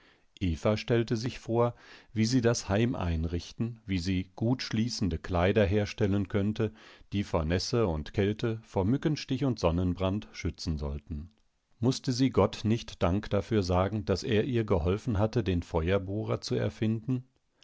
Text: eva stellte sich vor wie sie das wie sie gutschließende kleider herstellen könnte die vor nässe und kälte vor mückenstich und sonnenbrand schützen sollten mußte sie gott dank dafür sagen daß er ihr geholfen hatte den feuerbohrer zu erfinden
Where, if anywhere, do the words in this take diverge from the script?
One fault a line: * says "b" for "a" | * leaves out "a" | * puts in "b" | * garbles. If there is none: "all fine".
* puts in "heim einrichten"
* puts in "nicht"